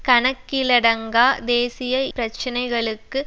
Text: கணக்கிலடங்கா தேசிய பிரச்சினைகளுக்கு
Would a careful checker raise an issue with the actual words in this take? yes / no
no